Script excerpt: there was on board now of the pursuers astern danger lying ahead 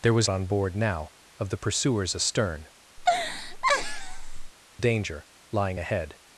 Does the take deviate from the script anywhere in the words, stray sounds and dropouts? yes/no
yes